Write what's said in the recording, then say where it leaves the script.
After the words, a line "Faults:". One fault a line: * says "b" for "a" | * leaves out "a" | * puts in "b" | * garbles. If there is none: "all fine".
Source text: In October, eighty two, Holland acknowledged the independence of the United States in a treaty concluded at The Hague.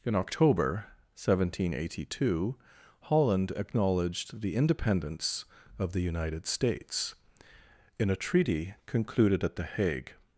In October, seventeen eighty two, Holland acknowledged the independence of the United States in a treaty concluded at The Hague.
Faults:
* puts in "seventeen"